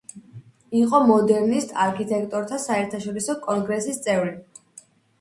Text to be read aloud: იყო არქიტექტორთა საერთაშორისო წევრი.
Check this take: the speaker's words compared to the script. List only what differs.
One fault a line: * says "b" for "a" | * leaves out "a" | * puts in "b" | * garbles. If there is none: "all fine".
* puts in "მოდერნისტ"
* puts in "კონგრესის"